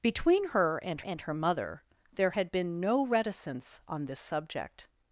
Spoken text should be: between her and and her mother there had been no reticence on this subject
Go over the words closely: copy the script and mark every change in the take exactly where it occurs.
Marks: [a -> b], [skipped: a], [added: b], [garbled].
between her and and her mother there had been no reticence on this subject